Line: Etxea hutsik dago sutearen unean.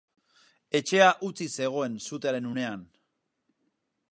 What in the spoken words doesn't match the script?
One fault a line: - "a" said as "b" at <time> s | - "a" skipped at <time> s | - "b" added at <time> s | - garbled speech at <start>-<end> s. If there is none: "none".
- "dago" said as "zegoen" at 1.6 s